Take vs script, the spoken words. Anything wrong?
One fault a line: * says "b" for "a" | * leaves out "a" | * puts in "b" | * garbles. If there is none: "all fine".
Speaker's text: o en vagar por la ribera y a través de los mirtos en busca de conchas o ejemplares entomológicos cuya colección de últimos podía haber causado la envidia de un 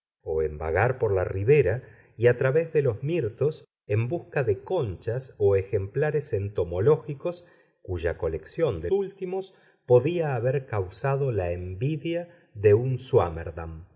all fine